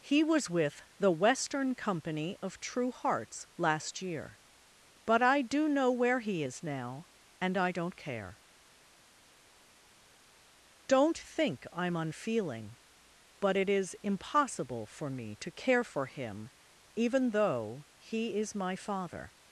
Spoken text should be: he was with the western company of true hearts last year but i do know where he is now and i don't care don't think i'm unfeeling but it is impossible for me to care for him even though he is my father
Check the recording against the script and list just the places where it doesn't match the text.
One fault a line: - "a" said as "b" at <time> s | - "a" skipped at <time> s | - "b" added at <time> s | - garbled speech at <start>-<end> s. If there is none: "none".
none